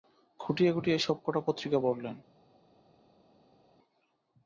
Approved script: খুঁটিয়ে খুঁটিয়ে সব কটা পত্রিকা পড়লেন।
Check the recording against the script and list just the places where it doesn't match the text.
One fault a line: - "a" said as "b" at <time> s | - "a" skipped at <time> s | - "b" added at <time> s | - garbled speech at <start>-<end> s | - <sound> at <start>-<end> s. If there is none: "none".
none